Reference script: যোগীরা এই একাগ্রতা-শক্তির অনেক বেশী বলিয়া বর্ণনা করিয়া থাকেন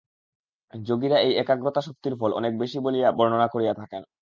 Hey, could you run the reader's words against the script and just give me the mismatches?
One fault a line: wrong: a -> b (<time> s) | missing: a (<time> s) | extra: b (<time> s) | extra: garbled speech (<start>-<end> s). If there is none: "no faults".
extra: ফল (2.1 s)